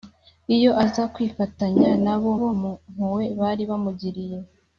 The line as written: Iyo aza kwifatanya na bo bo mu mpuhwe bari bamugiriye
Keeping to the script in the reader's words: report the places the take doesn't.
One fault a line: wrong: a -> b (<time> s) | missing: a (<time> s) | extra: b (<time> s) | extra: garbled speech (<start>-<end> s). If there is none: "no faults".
no faults